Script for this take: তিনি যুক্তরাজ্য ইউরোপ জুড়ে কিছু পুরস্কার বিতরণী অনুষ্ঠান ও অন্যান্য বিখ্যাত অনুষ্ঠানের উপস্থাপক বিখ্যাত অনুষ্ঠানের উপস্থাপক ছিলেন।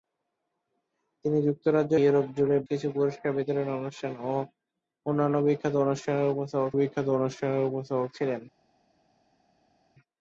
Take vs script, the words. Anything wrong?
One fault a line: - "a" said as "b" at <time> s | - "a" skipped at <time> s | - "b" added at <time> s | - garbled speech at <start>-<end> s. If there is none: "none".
none